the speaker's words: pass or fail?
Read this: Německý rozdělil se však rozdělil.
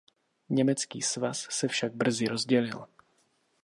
fail